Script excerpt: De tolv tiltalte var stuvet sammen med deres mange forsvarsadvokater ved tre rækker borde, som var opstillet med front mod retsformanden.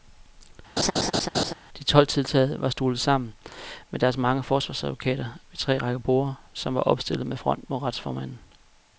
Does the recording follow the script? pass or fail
pass